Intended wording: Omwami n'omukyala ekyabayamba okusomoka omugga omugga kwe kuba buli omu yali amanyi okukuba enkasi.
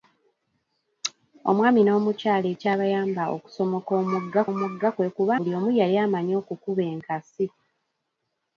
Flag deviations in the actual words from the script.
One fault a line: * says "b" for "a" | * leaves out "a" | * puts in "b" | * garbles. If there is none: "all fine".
all fine